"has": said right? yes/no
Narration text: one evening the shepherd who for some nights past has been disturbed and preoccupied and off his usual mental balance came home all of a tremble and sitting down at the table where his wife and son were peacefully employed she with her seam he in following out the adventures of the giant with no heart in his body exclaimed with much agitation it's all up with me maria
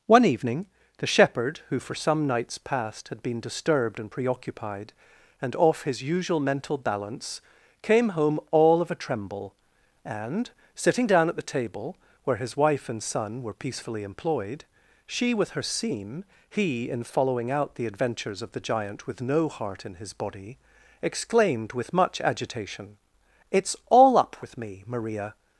no